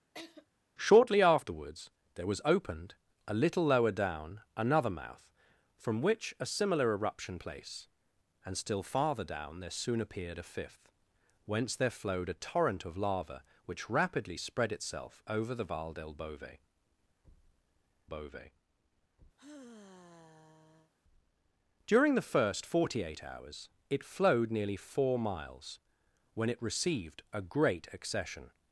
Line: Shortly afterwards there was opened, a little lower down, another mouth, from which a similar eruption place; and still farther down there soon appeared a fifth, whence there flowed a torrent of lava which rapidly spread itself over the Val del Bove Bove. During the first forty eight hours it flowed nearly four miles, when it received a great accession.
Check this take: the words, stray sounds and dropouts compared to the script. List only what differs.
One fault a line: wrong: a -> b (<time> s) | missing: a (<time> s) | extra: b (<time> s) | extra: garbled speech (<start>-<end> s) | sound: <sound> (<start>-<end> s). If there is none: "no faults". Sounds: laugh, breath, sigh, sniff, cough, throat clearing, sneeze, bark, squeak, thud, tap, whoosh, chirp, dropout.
sound: laugh (0.1-0.5 s)
sound: sigh (19.4-20.9 s)